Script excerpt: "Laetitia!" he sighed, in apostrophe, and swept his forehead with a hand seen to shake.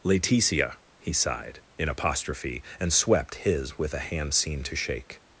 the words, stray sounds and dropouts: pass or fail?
fail